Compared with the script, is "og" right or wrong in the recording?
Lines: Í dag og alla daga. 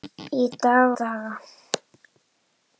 wrong